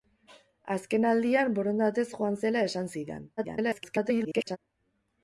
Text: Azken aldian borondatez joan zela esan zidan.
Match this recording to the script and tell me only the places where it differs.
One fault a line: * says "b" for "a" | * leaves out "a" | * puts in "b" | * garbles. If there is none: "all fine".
* garbles